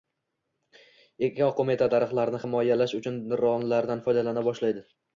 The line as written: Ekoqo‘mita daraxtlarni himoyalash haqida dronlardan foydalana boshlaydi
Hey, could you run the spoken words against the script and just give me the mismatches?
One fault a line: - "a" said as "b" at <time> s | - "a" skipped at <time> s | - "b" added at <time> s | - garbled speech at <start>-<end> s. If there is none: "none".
- "haqida" said as "uchun" at 3.0 s